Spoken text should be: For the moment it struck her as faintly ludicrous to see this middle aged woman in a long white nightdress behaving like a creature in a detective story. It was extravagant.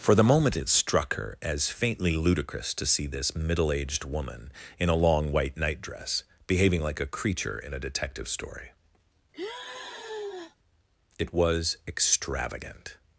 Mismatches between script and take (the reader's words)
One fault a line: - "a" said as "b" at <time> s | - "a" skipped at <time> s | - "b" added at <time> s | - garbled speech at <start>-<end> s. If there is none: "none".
none